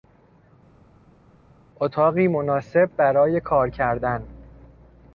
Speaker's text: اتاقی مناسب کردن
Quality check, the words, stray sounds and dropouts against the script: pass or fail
fail